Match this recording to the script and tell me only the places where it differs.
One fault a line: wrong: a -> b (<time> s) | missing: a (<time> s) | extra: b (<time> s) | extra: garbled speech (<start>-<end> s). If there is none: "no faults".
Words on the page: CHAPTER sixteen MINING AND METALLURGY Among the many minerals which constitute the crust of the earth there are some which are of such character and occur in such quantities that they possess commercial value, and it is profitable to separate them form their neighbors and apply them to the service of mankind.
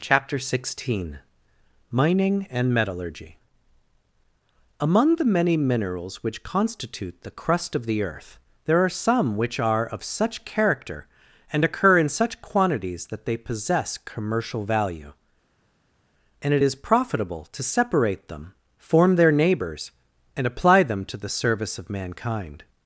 no faults